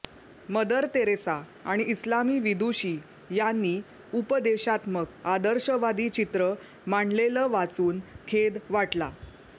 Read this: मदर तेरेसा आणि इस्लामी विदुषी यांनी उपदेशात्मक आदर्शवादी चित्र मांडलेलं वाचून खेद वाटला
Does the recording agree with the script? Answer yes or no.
yes